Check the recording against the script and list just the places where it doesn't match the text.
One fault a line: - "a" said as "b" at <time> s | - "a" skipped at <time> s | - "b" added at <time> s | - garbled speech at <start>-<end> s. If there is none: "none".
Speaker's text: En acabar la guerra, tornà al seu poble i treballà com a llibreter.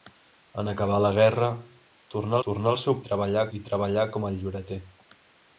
- "tornà" added at 2.5 s
- "poble" said as "treballà" at 3.1 s